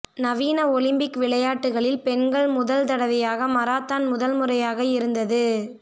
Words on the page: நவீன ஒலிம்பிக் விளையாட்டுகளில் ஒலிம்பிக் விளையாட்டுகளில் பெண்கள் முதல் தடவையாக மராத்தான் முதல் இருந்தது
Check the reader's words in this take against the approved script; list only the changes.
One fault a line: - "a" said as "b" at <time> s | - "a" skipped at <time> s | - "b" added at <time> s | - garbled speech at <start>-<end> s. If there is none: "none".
- "ஒலிம்பிக் விளையாட்டுகளில்" skipped at 2.0 s
- "முறையாக" added at 4.3 s